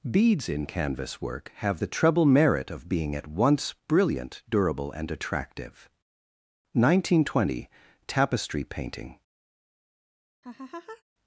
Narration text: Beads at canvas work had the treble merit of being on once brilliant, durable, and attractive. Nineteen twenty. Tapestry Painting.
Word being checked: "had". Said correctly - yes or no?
no